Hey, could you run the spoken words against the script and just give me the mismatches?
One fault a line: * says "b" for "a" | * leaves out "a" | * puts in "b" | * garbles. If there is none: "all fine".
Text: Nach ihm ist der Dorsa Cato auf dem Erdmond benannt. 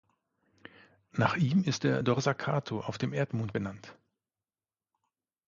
all fine